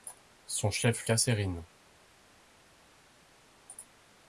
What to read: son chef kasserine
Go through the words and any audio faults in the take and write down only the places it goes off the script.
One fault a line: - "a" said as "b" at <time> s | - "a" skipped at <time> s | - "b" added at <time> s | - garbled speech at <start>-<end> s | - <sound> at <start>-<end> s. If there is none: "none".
none